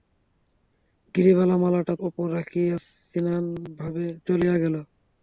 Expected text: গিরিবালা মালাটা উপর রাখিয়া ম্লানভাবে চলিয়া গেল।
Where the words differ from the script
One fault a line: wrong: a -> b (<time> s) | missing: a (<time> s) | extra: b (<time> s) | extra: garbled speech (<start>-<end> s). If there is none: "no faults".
no faults